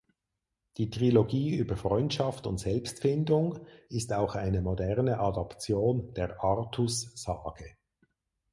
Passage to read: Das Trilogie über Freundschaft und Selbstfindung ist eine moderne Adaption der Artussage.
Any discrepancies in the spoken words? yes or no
yes